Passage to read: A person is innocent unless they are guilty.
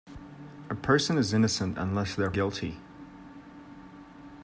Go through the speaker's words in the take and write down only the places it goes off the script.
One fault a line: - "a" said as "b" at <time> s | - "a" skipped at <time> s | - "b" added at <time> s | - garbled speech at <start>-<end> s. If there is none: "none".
none